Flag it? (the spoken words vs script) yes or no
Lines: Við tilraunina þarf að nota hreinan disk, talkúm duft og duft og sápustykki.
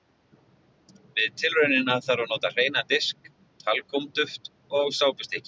yes